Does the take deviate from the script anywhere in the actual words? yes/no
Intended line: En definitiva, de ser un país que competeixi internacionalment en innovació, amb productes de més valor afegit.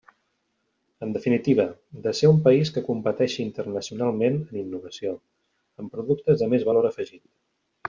no